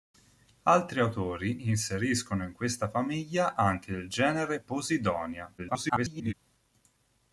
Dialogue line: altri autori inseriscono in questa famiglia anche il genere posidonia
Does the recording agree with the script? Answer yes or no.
no